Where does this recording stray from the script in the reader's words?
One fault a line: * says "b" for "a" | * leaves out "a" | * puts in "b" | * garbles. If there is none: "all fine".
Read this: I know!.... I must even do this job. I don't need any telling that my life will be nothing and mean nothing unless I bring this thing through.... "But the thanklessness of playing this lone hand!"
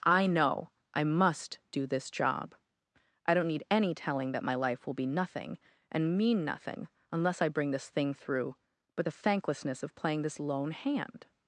* leaves out "even"